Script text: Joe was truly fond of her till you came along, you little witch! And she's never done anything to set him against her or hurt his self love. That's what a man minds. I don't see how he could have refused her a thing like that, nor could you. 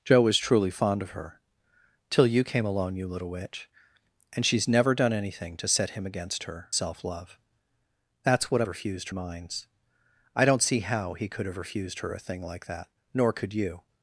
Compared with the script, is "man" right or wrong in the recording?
wrong